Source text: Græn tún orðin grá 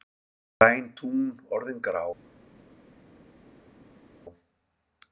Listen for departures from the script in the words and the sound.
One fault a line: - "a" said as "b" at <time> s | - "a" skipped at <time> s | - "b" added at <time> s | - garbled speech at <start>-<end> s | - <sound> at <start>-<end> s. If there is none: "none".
none